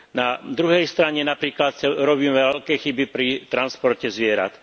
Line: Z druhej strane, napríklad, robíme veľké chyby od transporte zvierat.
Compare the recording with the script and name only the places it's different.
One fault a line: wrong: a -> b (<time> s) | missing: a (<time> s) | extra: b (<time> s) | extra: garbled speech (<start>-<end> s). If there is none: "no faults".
wrong: Z -> Na (0.1 s)
wrong: od -> pri (3.1 s)